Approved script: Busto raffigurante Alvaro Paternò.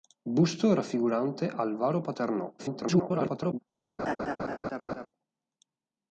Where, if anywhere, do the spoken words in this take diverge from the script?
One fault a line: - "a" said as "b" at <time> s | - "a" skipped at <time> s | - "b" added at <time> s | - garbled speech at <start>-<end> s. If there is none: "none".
- garbled speech at 2.6-3.6 s